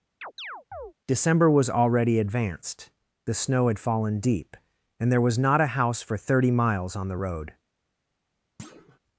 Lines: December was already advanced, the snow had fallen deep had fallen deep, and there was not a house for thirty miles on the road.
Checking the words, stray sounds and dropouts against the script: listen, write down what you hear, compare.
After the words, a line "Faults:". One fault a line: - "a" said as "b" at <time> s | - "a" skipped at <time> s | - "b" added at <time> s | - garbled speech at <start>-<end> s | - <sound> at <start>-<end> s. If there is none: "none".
December was already advanced, the snow had fallen deep, and there was not a house for thirty miles on the road.
Faults:
- chirp at 0.2-0.9 s
- "had fallen deep" skipped at 4.6 s
- thud at 8.6-9.0 s